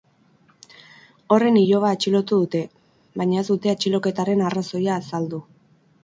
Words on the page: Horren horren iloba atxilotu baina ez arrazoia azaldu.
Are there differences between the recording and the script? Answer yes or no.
yes